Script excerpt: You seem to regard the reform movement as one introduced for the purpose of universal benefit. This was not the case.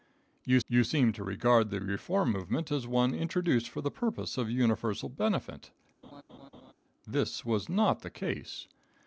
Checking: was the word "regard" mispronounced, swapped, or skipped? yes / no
no